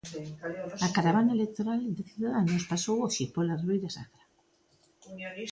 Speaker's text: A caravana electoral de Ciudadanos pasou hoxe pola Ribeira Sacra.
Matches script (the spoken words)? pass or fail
pass